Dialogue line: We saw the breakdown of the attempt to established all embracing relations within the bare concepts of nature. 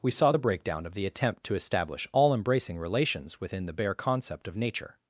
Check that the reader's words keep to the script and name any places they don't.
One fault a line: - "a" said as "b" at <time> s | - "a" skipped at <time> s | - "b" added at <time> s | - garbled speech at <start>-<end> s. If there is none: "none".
- "established" said as "establish" at 1.5 s
- "concepts" said as "concept" at 3.9 s